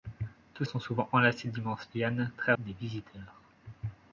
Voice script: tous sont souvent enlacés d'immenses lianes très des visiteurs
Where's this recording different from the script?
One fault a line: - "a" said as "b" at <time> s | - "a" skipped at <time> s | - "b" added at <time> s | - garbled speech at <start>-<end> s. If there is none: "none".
none